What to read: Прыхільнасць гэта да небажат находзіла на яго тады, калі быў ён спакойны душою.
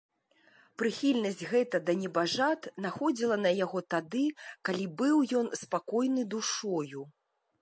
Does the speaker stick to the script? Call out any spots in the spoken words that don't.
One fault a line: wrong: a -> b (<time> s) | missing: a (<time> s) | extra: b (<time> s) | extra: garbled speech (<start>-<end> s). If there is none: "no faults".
no faults